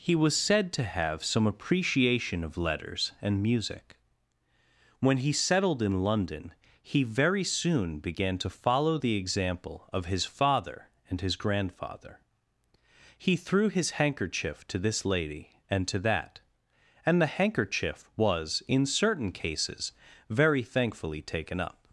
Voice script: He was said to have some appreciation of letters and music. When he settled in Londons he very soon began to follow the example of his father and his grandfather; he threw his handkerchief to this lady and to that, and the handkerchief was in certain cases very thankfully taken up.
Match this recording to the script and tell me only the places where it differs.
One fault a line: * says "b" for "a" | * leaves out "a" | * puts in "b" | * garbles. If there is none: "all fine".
* says "London" for "Londons"